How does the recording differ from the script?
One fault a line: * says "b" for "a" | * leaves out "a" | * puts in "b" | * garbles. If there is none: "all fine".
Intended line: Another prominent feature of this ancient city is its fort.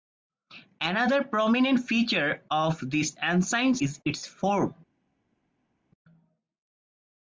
* leaves out "city"